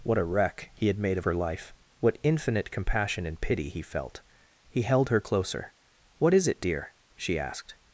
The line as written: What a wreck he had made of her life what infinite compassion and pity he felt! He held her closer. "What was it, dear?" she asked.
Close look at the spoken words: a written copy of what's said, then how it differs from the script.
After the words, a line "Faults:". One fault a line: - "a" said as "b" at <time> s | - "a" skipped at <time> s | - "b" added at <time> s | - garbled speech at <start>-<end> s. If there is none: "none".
What a wreck he had made of her life what infinite compassion and pity he felt! He held her closer. "What is it, dear?" she asked.
Faults:
- "was" said as "is" at 6.3 s